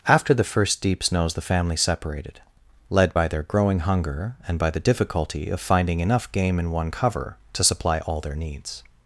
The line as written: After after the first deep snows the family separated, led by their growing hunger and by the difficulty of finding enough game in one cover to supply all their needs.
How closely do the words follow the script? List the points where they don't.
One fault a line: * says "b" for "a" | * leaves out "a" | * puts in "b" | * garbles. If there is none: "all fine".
* leaves out "after"